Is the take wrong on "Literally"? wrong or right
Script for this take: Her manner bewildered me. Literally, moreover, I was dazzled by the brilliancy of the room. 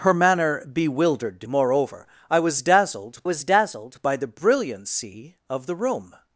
wrong